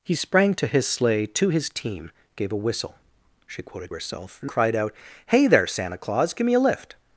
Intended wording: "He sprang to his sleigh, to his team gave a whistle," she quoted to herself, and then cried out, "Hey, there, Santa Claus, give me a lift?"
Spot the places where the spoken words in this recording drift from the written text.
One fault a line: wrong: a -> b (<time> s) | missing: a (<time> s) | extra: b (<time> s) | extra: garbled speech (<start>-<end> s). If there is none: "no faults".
missing: to (3.9 s)
missing: then (4.5 s)